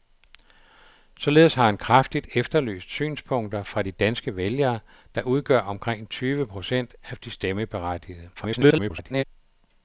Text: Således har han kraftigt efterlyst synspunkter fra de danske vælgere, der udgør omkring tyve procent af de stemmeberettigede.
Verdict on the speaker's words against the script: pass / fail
fail